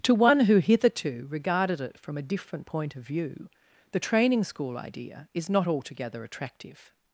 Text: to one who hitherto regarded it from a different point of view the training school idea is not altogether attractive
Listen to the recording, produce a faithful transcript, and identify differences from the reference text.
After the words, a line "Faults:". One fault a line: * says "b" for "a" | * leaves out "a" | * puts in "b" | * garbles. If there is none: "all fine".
to one who hitherto regarded it from a different point of view the training school idea is not altogether attractive
Faults:
all fine